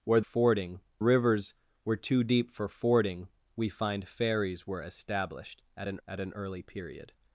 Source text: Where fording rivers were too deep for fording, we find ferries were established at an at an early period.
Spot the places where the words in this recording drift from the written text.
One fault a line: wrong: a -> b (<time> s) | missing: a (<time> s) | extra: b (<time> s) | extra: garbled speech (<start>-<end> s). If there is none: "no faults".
no faults